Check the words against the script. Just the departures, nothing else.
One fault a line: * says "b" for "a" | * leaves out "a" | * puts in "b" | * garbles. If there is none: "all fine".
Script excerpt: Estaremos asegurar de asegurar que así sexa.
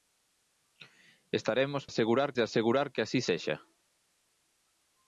all fine